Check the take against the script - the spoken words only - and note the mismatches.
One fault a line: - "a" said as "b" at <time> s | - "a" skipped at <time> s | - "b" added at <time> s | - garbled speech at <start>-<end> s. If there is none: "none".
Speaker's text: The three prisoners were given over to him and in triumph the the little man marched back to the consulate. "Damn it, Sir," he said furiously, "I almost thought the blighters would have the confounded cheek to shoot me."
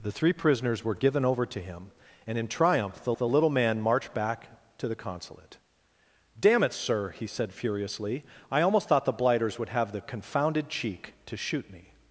none